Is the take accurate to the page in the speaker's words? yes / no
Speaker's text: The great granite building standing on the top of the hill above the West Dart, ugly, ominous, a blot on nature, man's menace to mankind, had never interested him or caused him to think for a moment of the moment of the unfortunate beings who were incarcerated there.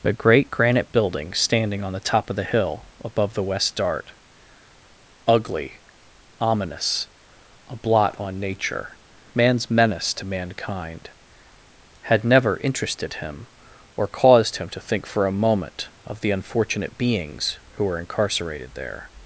no